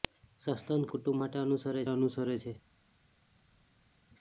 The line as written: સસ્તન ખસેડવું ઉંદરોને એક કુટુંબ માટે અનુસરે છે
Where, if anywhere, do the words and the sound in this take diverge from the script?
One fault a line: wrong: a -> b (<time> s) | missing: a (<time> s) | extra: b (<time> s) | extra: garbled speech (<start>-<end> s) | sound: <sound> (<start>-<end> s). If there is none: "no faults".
missing: ખસેડવું ઉંદરોને એક (0.9 s)
extra: અનુસરે (1.9 s)